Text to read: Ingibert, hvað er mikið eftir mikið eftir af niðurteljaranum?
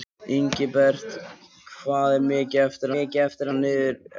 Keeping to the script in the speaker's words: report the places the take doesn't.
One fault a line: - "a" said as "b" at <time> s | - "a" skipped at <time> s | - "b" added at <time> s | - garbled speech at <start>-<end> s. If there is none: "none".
none